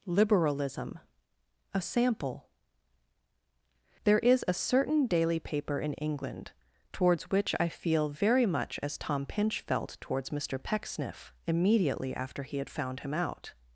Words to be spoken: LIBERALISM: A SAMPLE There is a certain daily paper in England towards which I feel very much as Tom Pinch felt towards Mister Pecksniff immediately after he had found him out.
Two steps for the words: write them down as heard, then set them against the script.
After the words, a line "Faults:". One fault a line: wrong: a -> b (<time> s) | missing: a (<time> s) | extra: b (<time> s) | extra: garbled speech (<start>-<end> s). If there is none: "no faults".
LIBERALISM: A SAMPLE There is a certain daily paper in England towards which I feel very much as Tom Pinch felt towards Mister Pecksniff immediately after he had found him out.
Faults:
no faults